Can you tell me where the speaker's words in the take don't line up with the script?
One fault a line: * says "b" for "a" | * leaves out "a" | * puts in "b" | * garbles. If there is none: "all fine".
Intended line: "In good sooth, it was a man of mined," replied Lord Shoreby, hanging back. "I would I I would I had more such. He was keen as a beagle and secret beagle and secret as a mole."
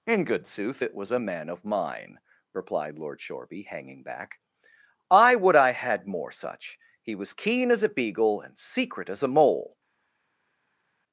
* says "mine" for "mined"
* leaves out "I would I"
* leaves out "beagle and secret"